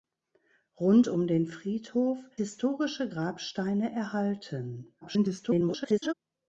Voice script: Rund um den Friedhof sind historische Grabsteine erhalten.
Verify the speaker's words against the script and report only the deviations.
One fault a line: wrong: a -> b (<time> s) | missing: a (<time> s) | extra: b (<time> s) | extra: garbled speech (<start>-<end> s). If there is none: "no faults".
missing: sind (2.3 s)
extra: garbled speech (5.0-6.1 s)